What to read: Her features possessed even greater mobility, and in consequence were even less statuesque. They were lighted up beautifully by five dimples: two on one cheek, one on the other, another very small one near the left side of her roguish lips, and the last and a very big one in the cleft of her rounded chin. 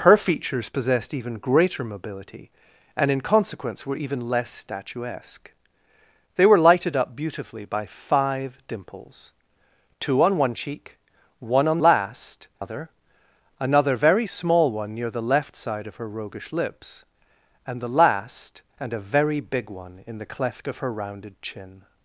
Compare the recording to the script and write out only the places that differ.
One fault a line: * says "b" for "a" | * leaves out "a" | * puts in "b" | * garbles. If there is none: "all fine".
* says "last" for "the"